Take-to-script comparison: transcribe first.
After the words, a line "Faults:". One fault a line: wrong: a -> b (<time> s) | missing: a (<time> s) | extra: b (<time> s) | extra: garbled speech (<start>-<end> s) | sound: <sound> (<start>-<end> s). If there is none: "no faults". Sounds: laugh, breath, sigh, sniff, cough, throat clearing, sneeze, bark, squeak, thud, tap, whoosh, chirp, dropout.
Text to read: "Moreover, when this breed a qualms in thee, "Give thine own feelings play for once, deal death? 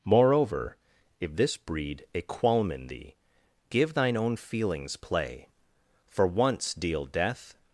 "Moreover, if this breed a qualm in thee, "Give thine own feelings play for once, deal death?
Faults:
wrong: when -> if (1.2 s)
wrong: qualms -> qualm (2.2 s)